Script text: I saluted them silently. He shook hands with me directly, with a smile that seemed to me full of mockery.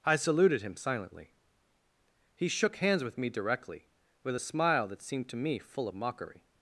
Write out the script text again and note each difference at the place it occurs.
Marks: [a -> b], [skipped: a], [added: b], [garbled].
I saluted [them -> him] silently. He shook hands with me directly, with a smile that seemed to me full of mockery.